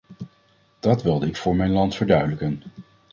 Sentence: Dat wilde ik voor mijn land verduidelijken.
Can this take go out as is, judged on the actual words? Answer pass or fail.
pass